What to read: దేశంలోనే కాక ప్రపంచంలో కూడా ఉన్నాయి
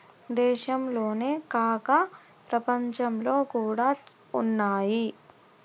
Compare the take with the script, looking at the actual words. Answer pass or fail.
pass